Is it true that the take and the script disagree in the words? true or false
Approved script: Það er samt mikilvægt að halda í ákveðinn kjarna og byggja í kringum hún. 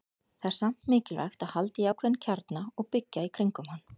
true